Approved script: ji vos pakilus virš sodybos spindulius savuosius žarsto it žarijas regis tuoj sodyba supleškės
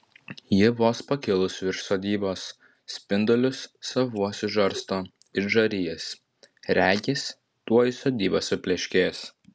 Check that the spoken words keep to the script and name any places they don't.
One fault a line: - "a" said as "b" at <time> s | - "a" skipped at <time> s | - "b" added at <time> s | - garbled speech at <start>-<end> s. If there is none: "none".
none